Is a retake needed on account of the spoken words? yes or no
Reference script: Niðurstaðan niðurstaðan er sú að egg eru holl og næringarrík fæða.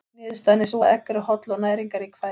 yes